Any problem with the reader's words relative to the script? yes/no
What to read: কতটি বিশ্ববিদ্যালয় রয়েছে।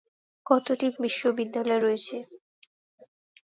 no